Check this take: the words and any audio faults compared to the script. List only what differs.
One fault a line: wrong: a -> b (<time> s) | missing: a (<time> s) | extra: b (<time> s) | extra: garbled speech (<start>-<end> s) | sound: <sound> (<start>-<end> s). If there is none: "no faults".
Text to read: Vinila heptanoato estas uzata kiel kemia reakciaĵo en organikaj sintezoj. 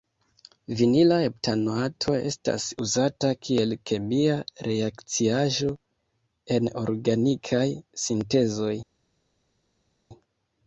no faults